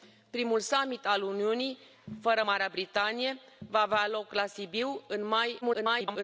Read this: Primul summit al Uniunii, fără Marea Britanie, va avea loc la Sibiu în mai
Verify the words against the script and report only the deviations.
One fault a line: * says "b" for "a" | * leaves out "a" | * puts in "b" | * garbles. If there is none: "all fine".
* garbles